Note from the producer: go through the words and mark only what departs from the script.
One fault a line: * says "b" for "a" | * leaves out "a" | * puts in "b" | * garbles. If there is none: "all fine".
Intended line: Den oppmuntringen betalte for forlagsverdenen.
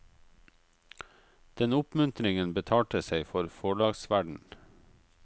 * puts in "seg"